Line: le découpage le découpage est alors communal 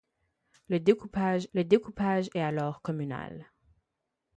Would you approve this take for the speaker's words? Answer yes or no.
yes